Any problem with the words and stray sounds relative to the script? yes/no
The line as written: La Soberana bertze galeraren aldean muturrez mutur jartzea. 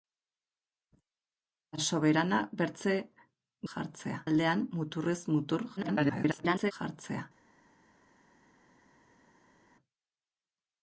yes